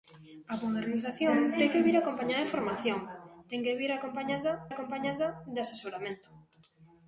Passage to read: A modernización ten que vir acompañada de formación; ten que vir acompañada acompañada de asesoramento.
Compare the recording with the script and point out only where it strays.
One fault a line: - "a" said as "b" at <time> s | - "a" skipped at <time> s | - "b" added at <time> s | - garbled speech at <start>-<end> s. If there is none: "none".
none